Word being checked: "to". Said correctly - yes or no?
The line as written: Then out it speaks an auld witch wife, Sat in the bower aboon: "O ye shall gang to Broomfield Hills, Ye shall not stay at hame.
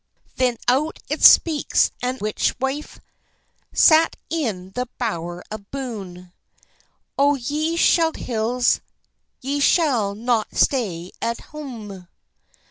no